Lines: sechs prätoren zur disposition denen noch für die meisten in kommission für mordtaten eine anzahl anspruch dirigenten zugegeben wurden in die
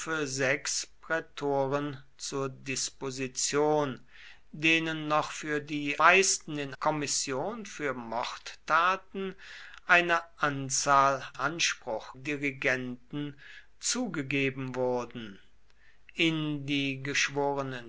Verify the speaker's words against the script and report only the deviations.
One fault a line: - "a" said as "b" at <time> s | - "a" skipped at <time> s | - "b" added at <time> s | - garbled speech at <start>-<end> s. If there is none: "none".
none